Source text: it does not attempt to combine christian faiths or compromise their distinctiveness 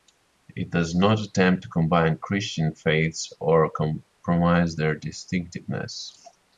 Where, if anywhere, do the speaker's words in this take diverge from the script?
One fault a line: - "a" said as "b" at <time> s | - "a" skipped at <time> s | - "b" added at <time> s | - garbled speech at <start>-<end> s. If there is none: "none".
none